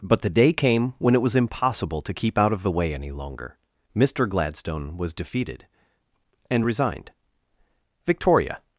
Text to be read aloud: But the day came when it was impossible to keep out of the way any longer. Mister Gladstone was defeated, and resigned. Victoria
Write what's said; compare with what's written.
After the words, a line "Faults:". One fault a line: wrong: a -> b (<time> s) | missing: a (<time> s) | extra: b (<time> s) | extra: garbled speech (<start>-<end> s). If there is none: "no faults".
But the day came when it was impossible to keep out of the way any longer. Mister Gladstone was defeated, and resigned. Victoria
Faults:
no faults